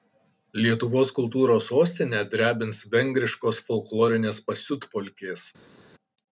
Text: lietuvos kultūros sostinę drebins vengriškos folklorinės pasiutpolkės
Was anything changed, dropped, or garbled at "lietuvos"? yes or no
no